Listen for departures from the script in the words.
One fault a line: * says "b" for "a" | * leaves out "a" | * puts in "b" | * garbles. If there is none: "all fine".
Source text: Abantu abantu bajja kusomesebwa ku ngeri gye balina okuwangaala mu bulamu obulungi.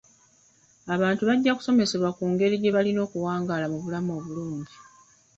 * leaves out "abantu"